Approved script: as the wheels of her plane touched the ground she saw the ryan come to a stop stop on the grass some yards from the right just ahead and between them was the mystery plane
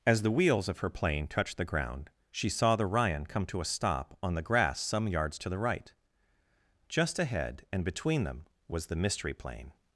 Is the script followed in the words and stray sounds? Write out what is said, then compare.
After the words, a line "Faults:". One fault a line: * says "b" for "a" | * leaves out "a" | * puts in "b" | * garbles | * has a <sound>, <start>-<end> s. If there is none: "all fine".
as the wheels of her plane touched the ground she saw the ryan come to a stop on the grass some yards to the right just ahead and between them was the mystery plane
Faults:
* leaves out "stop"
* says "to" for "from"